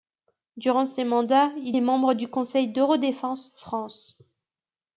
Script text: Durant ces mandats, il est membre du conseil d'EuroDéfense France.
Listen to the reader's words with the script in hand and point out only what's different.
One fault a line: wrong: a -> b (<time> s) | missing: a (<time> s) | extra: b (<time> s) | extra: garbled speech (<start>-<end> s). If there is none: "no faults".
no faults